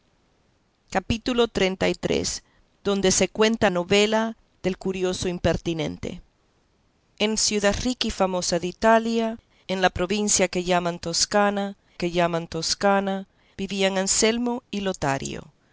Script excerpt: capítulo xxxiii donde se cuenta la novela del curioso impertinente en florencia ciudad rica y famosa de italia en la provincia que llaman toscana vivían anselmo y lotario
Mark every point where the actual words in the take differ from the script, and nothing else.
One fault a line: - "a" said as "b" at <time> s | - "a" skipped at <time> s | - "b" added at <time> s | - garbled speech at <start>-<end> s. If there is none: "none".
- "la" skipped at 3.7 s
- "florencia" skipped at 7.4 s
- "que llaman toscana" added at 11.9 s